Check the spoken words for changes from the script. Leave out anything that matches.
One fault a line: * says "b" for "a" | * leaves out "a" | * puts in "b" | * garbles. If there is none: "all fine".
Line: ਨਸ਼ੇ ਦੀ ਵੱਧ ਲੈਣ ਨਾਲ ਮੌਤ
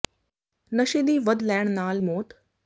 all fine